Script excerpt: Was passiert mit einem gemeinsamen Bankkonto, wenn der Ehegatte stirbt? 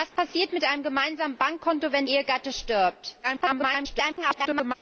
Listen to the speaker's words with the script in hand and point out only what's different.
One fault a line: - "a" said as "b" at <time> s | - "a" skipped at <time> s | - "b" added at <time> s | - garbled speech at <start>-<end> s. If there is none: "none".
- "der" skipped at 2.1 s
- garbled speech at 3.2-4.7 s